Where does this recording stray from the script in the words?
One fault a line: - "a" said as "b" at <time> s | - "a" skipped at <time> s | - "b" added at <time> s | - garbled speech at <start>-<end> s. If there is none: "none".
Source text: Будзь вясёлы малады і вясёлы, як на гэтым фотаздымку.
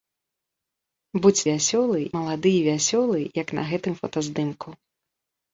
none